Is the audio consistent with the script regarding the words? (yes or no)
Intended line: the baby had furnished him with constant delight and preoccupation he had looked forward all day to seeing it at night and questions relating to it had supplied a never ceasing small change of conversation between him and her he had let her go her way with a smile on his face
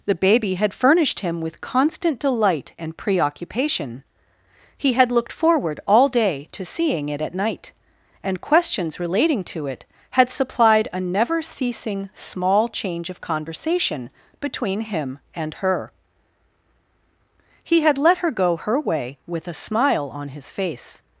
yes